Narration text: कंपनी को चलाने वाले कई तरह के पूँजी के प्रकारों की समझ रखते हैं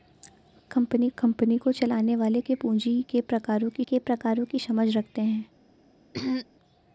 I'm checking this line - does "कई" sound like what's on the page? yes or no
no